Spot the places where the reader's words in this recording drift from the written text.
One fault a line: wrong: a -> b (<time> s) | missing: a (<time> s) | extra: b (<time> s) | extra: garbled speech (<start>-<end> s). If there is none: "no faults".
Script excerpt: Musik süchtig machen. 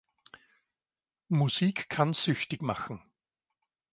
extra: kann (1.9 s)